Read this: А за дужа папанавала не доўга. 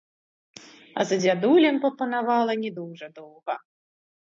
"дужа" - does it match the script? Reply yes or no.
no